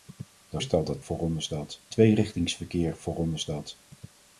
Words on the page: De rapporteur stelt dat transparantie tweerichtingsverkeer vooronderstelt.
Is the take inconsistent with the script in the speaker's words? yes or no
yes